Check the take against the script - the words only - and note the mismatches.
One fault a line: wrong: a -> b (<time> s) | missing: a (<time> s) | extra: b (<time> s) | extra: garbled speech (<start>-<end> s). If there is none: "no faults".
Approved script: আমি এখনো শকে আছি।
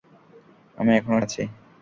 missing: শকে (1.2 s)